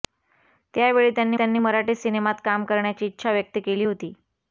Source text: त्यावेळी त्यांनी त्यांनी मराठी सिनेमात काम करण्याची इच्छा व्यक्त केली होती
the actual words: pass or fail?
pass